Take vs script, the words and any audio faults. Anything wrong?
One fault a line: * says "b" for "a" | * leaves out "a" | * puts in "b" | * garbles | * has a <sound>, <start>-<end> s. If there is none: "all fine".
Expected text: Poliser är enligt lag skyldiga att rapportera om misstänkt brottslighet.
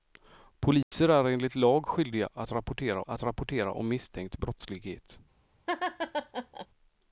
* has a dropout, 0.8-0.9 s
* puts in "att rapportera"
* has a laugh, 5.7-6.7 s